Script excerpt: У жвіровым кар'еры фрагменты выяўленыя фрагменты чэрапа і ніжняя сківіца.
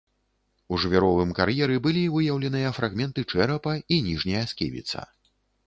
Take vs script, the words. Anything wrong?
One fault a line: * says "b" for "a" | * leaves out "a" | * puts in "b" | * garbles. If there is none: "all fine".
* says "былі" for "фрагменты"